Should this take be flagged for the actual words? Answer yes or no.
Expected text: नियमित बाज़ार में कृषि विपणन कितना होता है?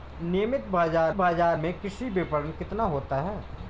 yes